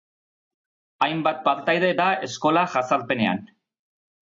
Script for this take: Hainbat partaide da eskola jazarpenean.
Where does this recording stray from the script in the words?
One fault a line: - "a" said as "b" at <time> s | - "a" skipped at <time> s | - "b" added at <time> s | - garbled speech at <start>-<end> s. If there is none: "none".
none